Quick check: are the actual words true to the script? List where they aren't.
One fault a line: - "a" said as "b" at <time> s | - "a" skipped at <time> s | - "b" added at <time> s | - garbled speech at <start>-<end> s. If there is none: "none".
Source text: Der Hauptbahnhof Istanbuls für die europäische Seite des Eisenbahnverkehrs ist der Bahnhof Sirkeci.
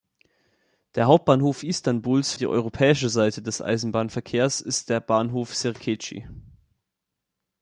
- "für" skipped at 2.3 s